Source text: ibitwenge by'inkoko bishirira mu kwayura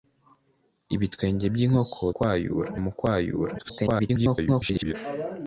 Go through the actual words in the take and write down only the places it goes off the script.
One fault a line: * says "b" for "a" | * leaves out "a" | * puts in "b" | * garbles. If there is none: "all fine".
* says "kwayura" for "bishirira"
* garbles